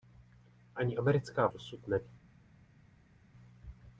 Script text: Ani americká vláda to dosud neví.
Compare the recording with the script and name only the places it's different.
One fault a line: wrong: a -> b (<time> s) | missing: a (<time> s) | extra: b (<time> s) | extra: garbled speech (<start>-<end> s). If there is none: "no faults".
missing: vláda to (1.5 s)